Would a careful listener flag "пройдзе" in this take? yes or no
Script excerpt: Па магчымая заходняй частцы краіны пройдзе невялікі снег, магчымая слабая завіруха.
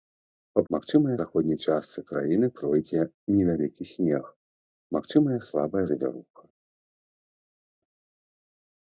no